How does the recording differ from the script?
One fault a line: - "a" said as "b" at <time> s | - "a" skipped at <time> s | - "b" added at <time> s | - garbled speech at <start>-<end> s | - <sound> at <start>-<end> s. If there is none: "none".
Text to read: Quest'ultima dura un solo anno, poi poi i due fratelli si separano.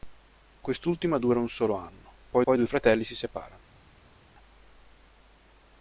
none